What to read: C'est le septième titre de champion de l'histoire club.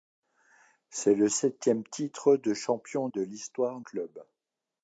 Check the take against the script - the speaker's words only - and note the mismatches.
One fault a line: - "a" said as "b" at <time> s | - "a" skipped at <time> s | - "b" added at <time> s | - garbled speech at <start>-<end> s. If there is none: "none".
none